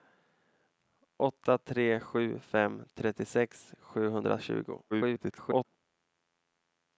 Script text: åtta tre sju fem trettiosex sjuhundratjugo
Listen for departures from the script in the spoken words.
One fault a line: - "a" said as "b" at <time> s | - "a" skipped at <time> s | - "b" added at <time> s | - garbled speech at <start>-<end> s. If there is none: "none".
- garbled speech at 4.9-5.7 s